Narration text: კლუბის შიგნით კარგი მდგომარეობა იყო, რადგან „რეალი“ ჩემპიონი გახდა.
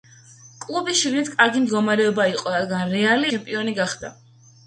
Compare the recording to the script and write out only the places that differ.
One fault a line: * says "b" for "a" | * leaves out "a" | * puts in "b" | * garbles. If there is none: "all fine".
all fine